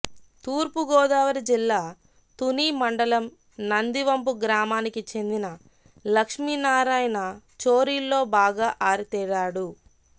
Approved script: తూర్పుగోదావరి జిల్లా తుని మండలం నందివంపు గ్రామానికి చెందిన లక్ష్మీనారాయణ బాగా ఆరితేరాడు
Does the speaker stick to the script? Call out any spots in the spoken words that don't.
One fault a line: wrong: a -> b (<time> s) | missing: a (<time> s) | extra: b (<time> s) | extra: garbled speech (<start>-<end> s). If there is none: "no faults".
extra: చోరీల్లో (7.6 s)